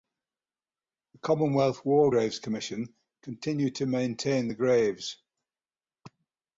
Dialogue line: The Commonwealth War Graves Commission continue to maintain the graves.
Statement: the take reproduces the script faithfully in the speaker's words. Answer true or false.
true